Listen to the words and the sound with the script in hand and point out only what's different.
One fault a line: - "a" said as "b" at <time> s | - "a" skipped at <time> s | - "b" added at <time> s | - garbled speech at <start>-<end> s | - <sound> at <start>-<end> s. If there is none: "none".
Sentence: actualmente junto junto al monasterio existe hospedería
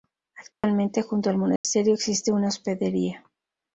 - dropout at 0.5-0.6 s
- "junto" skipped at 1.3 s
- dropout at 1.6-1.6 s
- "una" added at 2.3 s